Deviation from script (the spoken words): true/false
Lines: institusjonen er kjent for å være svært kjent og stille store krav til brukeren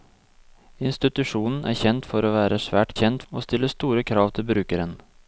false